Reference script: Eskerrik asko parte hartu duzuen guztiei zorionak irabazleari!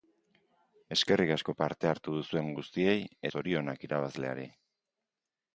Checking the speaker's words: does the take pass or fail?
pass